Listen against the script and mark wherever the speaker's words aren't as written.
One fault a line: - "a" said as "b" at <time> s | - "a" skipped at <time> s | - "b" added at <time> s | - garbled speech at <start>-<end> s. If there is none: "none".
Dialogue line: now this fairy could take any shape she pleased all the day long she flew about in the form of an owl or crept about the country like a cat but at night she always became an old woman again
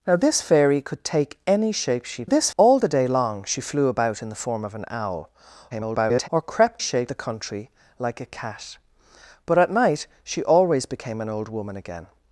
- "pleased" said as "this" at 2.2 s
- garbled speech at 5.7-6.3 s
- "about" said as "shape" at 6.8 s